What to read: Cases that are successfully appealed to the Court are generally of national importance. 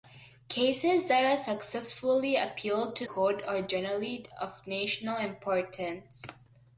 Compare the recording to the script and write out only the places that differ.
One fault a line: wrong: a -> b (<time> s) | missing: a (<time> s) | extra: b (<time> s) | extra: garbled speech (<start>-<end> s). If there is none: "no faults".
missing: the (3.0 s)